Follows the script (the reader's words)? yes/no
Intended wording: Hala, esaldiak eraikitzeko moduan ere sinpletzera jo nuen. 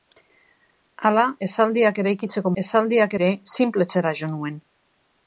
no